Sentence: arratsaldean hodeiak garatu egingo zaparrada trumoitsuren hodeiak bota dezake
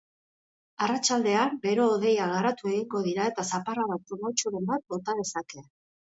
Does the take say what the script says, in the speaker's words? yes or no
no